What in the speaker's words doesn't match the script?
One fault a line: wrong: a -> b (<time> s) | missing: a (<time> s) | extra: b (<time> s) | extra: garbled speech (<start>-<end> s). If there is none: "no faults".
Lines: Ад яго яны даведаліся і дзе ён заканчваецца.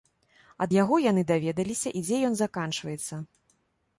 no faults